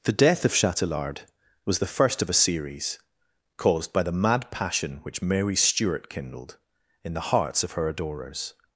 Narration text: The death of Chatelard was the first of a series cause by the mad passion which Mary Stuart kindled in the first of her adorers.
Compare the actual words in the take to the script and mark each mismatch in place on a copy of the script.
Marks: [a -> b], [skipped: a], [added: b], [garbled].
The death of Chatelard was the first of a series [cause -> caused] by the mad passion which Mary Stuart kindled in the [first -> hearts] of her adorers.